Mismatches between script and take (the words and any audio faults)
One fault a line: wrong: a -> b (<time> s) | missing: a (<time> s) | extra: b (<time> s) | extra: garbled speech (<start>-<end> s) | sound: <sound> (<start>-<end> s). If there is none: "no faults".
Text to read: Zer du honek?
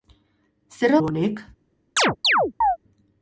sound: chirp (2.0-2.8 s)